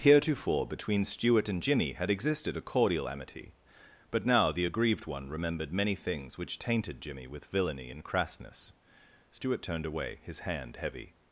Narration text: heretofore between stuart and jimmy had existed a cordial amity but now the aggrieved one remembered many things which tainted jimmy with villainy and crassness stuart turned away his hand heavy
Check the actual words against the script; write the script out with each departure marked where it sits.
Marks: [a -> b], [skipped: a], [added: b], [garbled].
heretofore between stuart and jimmy had existed a cordial amity but now the aggrieved one remembered many things which tainted jimmy with villainy and crassness stuart turned away his hand heavy